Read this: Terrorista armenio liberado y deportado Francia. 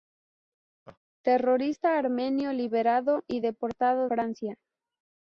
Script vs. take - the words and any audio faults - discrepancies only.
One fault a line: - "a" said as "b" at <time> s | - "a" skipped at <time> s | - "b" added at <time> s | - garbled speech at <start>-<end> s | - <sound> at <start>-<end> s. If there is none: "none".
- laugh at 0.9-1.0 s